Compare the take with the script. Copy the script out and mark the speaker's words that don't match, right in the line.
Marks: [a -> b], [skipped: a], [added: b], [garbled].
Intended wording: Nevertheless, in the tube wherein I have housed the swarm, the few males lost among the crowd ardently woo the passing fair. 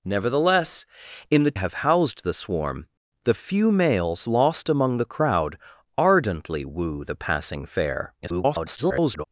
Nevertheless, in the [skipped: tube wherein I] have housed the swarm, the few males lost among the crowd ardently woo the passing fair. [garbled]